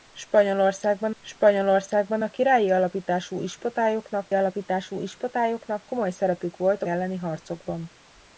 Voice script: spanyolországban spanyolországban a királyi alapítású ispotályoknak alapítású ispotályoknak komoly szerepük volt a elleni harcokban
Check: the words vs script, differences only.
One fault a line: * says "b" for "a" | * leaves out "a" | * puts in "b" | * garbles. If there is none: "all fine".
all fine